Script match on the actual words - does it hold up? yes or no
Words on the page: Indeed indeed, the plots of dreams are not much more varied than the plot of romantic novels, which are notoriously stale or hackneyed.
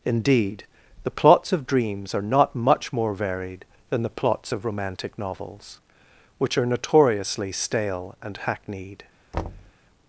no